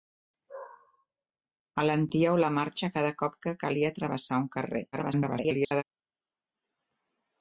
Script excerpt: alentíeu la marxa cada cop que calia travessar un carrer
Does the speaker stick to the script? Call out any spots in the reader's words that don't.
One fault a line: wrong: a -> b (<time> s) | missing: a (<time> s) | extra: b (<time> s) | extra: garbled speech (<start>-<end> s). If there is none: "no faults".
extra: garbled speech (4.9-5.8 s)